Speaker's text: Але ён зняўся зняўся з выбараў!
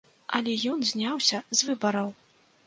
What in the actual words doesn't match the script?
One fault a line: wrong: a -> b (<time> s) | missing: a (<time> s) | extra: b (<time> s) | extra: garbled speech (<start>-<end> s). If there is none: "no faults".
missing: зняўся (1.4 s)